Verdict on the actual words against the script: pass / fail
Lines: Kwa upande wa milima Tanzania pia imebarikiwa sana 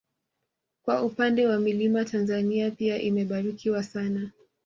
pass